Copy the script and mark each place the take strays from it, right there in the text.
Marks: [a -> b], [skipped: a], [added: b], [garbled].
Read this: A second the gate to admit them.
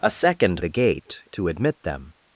A second the gate to admit them.